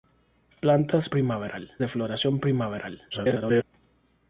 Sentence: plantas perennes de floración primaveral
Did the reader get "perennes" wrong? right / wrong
wrong